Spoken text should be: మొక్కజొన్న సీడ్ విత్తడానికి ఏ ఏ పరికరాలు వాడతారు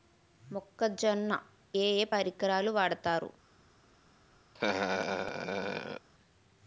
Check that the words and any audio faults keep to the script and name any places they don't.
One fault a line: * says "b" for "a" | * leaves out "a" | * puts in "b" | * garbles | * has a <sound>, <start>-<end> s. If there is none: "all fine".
* leaves out "సీడ్ విత్తడానికి"
* has a laugh, 4.5-6.1 s